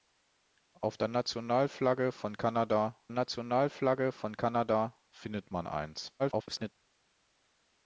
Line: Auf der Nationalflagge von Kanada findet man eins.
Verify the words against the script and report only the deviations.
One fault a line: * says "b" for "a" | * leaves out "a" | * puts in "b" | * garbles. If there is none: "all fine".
* puts in "Nationalflagge von Kanada"
* garbles